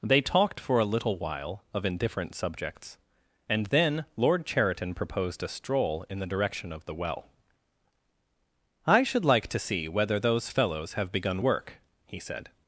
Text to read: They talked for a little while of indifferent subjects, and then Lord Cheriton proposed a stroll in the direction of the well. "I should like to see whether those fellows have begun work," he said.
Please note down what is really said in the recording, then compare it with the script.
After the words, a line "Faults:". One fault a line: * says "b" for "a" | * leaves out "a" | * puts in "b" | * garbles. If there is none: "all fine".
They talked for a little while of indifferent subjects, and then Lord Cheriton proposed a stroll in the direction of the well. "I should like to see whether those fellows have begun work," he said.
Faults:
all fine